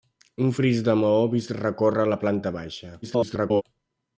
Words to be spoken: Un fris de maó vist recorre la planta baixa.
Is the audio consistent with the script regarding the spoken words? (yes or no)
no